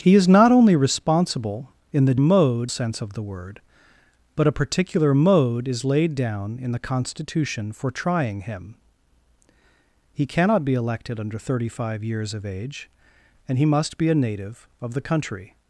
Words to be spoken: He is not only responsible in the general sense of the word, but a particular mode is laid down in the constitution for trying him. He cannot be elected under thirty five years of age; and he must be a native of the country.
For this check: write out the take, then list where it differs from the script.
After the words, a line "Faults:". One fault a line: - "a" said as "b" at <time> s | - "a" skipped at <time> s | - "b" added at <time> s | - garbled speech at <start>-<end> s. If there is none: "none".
He is not only responsible in the mode sense of the word, but a particular mode is laid down in the constitution for trying him. He cannot be elected under thirty five years of age; and he must be a native of the country.
Faults:
- "general" said as "mode" at 2.2 s